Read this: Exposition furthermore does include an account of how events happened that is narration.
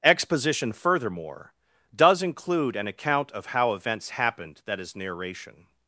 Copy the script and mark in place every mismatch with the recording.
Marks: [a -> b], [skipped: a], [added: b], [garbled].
Exposition furthermore does include an account of how events happened that is narration.